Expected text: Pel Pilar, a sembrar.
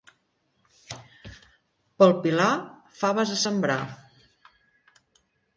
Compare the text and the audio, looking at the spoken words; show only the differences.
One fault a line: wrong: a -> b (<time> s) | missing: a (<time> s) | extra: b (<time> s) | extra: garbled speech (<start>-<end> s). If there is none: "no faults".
extra: faves (3.0 s)